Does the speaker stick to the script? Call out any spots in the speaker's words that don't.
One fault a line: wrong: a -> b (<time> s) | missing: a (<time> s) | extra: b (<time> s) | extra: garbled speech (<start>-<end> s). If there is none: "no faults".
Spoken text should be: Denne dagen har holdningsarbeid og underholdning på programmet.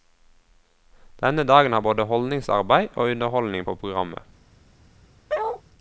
extra: både (1.8 s)